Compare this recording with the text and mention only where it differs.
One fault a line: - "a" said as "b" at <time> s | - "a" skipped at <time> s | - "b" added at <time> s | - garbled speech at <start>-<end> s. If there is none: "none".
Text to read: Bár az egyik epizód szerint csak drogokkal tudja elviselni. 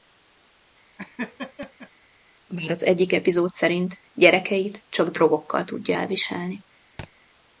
- "gyerekeit" added at 4.1 s